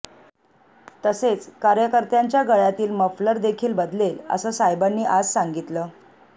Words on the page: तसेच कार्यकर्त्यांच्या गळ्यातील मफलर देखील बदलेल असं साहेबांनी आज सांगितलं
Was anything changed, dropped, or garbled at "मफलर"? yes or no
no